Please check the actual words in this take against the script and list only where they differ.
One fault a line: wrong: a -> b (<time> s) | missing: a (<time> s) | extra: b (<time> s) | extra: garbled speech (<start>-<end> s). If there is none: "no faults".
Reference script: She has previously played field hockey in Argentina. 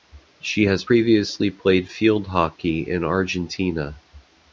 no faults